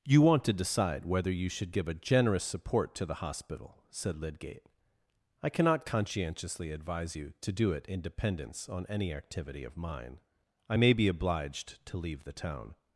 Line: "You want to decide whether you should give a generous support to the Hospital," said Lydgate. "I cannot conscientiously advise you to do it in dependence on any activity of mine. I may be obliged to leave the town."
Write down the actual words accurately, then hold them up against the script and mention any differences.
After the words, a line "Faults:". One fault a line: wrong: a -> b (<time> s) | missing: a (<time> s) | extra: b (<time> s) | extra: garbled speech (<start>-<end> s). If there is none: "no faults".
"You want to decide whether you should give a generous support to the Hospital," said Lydgate. "I cannot conscientiously advise you to do it in dependence on any activity of mine. I may be obliged to leave the town."
Faults:
no faults